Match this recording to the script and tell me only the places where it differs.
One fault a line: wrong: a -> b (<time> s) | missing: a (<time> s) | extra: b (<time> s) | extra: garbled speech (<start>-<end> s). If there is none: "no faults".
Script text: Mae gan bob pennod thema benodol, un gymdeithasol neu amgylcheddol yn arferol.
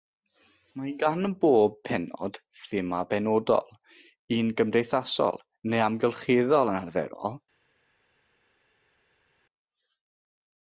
no faults